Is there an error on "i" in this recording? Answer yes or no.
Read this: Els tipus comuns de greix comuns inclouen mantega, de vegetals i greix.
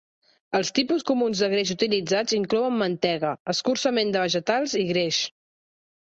no